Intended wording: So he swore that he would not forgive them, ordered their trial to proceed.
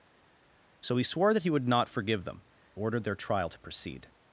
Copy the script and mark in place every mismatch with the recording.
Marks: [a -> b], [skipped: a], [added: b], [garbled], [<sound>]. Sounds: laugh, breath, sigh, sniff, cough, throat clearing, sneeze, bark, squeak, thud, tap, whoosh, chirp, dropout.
So he swore that he would not forgive them, ordered their trial to proceed.